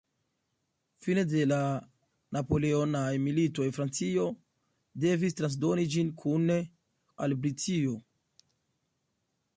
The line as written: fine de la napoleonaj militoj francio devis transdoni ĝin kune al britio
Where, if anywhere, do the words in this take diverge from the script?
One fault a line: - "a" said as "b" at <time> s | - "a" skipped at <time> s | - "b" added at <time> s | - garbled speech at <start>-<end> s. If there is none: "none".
none